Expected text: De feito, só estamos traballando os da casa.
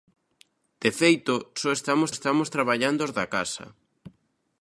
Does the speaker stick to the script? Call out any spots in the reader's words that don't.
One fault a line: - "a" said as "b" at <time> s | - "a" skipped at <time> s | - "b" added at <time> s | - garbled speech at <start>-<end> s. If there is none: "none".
- "estamos" added at 2.2 s